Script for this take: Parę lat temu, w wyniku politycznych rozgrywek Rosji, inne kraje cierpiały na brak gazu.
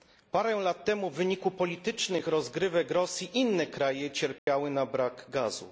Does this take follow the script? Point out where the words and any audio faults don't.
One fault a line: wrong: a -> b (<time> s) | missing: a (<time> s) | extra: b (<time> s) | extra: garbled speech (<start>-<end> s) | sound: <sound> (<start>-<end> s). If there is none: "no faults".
sound: dropout (4.4-4.5 s)